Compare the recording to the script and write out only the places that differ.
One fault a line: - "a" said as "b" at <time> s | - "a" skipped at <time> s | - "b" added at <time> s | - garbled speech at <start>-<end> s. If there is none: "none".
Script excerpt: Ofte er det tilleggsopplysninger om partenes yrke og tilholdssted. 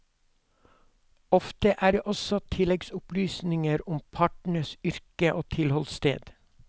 - "også" added at 2.0 s